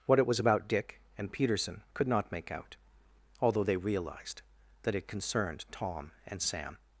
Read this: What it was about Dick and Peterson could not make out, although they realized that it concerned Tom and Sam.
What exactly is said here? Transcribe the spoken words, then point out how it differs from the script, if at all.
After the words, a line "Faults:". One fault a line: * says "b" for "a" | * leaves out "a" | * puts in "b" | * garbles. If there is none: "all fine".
What it was about Dick and Peterson could not make out, although they realized that it concerned Tom and Sam.
Faults:
all fine